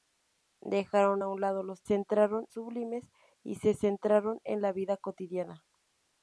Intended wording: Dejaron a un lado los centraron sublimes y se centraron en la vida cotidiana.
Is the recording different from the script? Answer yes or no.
no